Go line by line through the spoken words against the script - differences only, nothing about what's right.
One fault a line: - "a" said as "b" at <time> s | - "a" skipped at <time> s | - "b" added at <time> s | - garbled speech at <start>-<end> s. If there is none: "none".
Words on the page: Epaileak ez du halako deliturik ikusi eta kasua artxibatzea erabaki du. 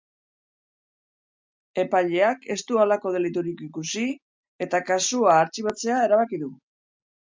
none